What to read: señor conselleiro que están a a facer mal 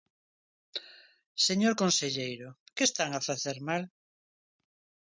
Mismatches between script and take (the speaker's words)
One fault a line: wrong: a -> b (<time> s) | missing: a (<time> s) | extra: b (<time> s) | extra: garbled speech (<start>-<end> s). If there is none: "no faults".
missing: a (3.2 s)